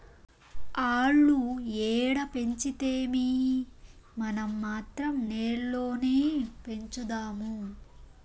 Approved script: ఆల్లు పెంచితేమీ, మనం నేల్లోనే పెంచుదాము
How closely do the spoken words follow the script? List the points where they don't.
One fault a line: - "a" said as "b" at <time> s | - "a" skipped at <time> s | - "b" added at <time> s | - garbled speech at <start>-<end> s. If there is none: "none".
- "ఏడ" added at 1.9 s
- "మాత్రం" added at 4.6 s